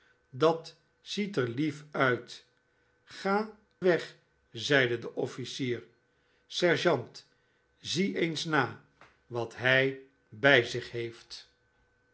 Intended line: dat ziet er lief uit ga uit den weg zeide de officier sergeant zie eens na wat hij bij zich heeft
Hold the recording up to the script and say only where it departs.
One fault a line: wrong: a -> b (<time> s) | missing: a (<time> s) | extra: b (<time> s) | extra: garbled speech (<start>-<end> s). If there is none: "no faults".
missing: uit den (3.6 s)